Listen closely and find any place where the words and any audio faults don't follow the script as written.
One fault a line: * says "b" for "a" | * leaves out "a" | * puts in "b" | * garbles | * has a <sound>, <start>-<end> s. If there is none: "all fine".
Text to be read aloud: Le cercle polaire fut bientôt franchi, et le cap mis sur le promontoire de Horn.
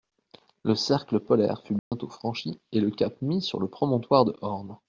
* has a dropout, 1.8-1.9 s